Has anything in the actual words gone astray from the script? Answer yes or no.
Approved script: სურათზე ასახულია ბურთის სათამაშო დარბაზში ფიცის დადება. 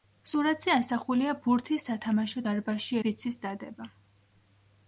no